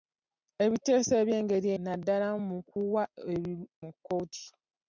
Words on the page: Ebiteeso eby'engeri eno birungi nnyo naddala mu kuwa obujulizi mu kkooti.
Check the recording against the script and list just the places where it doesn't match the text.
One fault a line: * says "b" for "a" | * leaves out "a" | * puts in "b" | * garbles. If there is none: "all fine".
* leaves out "eno birungi nnyo"
* leaves out "obujulizi"